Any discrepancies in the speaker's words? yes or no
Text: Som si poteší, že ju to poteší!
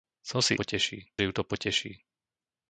no